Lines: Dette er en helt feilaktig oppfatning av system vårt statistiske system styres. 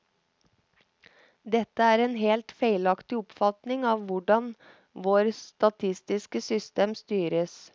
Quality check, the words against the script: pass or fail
fail